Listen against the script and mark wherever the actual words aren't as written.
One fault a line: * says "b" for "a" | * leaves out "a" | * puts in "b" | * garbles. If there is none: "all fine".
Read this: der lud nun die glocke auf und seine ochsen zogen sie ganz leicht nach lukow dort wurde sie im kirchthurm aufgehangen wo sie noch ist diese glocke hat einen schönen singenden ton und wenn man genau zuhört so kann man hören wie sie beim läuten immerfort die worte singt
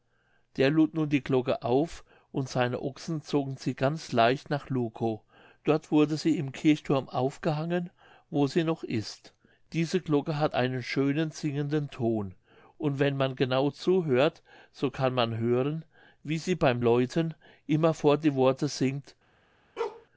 all fine